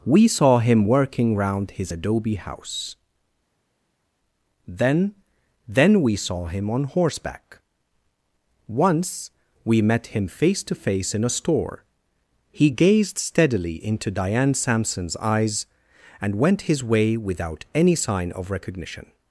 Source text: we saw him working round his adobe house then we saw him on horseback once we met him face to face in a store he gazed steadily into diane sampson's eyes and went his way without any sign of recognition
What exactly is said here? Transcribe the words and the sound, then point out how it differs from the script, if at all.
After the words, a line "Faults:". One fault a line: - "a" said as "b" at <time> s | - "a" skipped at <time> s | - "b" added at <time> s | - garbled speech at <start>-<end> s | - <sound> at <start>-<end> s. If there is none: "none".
we saw him working round his adobe house then then we saw him on horseback once we met him face to face in a store he gazed steadily into diane sampson's eyes and went his way without any sign of recognition
Faults:
- "then" added at 5.7 s